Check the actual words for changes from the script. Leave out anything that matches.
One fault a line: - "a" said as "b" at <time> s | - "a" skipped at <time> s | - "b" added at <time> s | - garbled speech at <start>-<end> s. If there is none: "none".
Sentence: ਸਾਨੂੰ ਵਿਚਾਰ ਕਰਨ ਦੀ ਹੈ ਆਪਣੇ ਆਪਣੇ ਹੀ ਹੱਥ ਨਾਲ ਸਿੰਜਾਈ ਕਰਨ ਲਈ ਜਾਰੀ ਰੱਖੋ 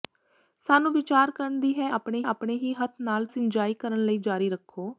none